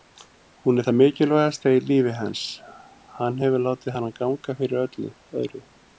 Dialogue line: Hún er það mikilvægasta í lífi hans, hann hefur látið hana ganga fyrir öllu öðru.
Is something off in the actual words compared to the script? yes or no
no